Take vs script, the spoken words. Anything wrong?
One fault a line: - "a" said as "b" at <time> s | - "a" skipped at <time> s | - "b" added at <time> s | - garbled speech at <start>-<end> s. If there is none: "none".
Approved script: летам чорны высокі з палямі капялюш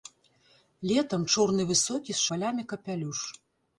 none